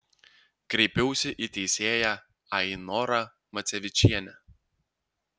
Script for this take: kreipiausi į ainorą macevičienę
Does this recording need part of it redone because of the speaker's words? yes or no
yes